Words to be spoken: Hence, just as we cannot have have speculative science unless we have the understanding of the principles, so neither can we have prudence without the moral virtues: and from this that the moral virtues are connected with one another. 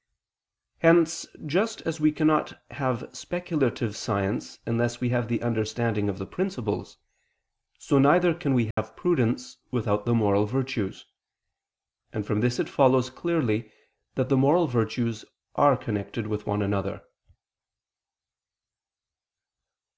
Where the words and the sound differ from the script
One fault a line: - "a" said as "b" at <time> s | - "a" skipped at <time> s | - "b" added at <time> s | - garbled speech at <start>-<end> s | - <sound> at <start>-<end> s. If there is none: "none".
- "have" skipped at 3.1 s
- dropout at 8.7-8.8 s
- "it follows clearly" added at 12.6 s